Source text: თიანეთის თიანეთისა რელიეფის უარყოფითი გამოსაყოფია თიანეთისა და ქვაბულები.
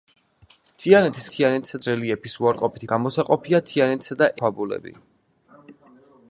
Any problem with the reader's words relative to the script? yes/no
no